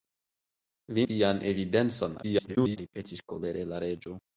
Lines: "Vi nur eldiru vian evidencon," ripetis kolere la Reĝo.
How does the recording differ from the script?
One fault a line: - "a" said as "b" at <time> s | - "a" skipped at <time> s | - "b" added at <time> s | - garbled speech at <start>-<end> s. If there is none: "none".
- "nur eldiru" skipped at 1.0 s
- garbled speech at 2.2-2.8 s